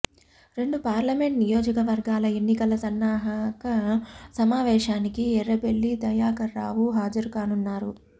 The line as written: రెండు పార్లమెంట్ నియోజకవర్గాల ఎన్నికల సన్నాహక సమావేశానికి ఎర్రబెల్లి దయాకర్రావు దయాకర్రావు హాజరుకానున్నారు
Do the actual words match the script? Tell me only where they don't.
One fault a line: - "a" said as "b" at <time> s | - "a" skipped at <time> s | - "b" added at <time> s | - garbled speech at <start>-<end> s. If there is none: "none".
- "దయాకర్రావు" skipped at 6.8 s